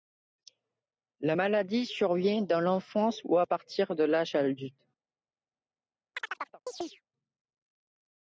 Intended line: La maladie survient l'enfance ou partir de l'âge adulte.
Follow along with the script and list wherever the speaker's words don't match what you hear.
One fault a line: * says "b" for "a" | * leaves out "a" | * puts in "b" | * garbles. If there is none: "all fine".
* puts in "dans"
* puts in "à"